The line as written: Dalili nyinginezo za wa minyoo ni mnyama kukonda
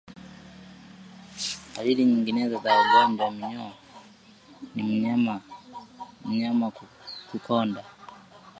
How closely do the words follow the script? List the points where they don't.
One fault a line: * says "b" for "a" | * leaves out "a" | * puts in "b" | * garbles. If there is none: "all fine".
* puts in "ugonjwa"